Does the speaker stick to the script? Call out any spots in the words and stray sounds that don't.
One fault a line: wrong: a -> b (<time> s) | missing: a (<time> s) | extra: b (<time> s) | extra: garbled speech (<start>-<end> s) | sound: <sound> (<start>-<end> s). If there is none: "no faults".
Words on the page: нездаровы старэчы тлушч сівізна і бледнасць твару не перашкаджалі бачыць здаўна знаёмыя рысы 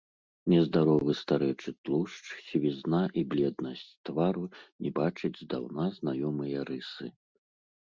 missing: перашкаджалі (4.9 s)